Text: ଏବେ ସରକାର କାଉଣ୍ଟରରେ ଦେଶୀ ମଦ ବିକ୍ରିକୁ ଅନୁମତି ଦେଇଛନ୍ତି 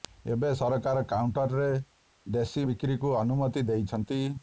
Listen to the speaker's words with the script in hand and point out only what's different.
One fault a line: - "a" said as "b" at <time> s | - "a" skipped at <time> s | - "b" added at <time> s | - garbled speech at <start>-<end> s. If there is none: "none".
- "ମଦ" skipped at 2.7 s